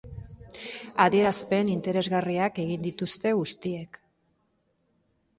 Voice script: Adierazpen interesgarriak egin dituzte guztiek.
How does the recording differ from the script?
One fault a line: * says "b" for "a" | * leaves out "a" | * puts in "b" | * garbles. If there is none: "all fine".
all fine